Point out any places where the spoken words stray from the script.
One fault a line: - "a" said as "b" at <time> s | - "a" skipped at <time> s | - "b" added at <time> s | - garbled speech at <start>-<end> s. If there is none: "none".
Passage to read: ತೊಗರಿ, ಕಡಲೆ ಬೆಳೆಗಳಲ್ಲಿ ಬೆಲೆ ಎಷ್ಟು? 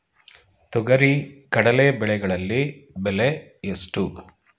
none